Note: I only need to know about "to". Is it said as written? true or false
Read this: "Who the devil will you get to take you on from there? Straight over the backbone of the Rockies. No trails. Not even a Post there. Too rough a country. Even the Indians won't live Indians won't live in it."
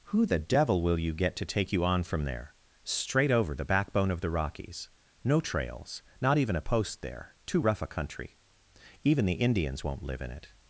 true